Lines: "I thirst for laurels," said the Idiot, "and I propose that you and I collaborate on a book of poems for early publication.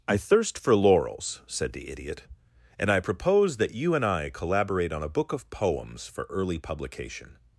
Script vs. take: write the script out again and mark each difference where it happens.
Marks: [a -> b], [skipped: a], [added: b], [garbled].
"I thirst for laurels," said the Idiot, "and I propose that you and I collaborate on a book of poems for early publication.